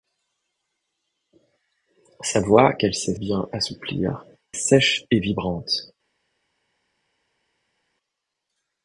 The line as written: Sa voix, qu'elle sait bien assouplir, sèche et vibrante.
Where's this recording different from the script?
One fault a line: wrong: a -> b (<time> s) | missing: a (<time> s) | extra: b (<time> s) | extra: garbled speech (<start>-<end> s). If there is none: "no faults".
no faults